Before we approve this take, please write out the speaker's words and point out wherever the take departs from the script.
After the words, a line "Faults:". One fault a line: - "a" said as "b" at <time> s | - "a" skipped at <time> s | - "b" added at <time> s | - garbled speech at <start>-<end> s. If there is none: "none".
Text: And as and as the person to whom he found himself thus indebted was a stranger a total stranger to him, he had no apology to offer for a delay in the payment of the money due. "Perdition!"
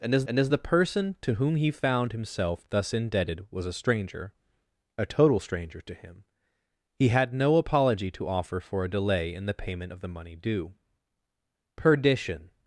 And as and as the person to whom he found himself thus indebted was a stranger a total stranger to him, he had no apology to offer for a delay in the payment of the money due. "Perdition!"
Faults:
none